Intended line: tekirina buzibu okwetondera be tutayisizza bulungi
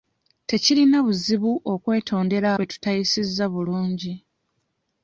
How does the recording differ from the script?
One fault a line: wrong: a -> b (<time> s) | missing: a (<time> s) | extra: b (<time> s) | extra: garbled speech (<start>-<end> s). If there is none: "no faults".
no faults